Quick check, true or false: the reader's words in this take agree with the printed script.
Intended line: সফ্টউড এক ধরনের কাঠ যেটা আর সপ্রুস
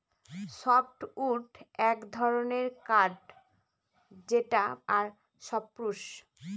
true